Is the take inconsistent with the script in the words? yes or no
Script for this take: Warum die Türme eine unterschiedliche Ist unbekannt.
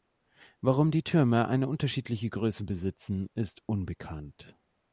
yes